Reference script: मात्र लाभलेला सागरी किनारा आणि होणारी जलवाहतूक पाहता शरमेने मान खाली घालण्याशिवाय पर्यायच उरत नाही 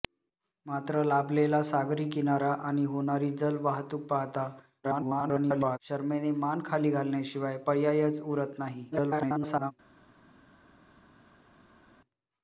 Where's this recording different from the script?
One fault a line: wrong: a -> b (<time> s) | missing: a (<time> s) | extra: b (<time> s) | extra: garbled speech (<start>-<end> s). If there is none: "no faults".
extra: garbled speech (4.8-5.8 s)
extra: garbled speech (8.9-9.7 s)